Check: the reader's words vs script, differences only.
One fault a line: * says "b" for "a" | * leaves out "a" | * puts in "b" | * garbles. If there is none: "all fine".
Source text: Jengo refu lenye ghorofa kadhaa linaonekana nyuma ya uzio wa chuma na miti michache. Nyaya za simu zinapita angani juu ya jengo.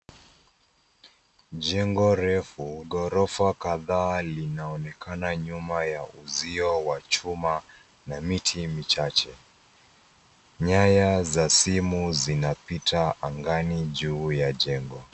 * leaves out "lenye"